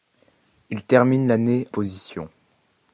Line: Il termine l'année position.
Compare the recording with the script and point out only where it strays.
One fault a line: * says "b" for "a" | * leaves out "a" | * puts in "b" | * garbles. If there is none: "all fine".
all fine